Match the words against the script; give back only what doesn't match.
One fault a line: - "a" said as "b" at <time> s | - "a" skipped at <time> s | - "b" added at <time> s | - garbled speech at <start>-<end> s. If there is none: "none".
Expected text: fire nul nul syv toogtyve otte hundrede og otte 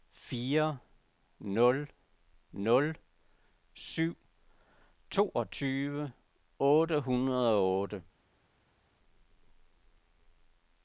none